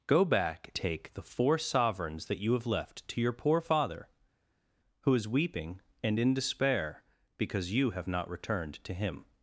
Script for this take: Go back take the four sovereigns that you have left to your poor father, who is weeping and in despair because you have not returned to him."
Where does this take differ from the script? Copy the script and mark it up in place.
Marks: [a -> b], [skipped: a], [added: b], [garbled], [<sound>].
Go back take the four sovereigns that you have left to your poor father, who is weeping and in despair because you have not returned to him."